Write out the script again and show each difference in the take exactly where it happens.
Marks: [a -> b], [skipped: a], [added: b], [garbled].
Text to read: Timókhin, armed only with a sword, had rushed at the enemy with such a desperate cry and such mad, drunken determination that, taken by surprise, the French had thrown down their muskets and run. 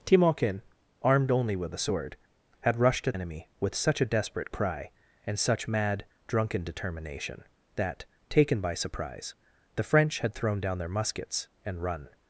Timókhin, armed only with a sword, had rushed at [skipped: the] enemy with such a desperate cry and such mad, drunken determination that, taken by surprise, the French had thrown down their muskets and run.